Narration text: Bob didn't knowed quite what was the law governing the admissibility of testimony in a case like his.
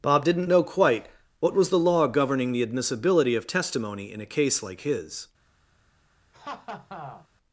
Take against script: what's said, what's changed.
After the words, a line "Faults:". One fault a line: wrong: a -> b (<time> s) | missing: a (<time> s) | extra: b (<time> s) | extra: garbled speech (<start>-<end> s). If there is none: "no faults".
Bob didn't know quite what was the law governing the admissibility of testimony in a case like his.
Faults:
wrong: knowed -> know (0.5 s)